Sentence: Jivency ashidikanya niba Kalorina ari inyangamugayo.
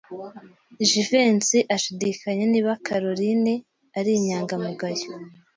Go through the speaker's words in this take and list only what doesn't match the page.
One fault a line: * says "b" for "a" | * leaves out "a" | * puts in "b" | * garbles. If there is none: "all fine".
all fine